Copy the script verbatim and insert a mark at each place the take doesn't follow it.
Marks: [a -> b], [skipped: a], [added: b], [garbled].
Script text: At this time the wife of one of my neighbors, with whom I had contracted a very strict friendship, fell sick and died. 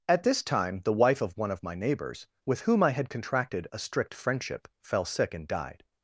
At this time the wife of one of my neighbors, with whom I had contracted a [skipped: very] strict friendship, fell sick and died.